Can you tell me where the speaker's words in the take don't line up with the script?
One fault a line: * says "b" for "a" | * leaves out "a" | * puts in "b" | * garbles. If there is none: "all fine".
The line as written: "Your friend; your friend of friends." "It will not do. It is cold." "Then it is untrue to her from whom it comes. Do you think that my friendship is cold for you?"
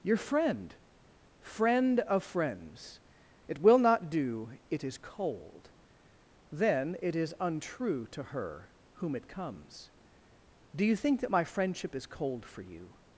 * leaves out "your"
* leaves out "from"